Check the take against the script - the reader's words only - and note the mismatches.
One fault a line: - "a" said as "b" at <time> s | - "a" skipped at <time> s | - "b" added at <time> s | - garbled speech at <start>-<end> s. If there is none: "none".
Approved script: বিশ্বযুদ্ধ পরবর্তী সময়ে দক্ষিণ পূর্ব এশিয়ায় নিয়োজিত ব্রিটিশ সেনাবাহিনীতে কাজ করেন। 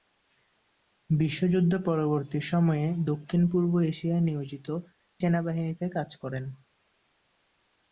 - "ব্রিটিশ" skipped at 4.7 s